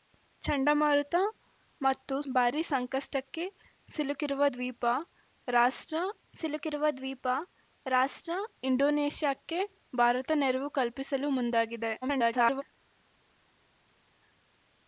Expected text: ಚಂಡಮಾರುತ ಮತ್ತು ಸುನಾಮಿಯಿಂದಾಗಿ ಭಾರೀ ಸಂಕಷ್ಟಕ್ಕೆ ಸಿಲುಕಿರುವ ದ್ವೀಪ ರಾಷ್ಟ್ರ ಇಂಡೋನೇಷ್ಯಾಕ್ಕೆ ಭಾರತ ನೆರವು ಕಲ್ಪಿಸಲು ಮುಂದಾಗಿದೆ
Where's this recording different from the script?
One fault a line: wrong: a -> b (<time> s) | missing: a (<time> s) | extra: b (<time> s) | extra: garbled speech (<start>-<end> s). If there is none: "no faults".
missing: ಸುನಾಮಿಯಿಂದಾಗಿ (2.1 s)
extra: ಸಿಲುಕಿರುವ ದ್ವೀಪ ರಾಷ್ಟ್ರ (6.3 s)
extra: garbled speech (12.0-12.6 s)